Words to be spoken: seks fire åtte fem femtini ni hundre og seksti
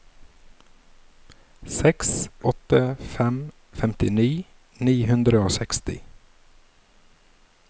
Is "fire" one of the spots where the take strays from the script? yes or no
yes